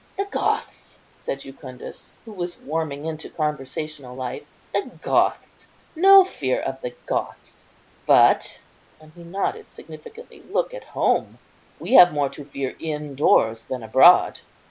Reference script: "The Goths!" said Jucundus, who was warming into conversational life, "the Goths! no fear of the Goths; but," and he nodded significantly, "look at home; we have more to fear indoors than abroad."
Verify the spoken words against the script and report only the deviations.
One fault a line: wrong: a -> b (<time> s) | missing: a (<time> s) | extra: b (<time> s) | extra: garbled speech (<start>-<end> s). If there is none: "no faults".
no faults